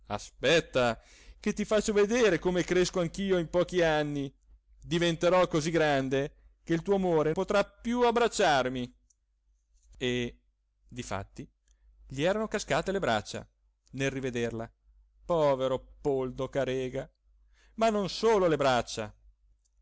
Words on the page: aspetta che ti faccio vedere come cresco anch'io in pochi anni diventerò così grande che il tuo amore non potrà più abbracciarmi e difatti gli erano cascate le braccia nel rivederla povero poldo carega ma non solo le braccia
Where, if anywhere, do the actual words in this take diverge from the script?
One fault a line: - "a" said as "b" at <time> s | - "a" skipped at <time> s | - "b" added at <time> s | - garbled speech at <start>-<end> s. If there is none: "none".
- "non" skipped at 7.3 s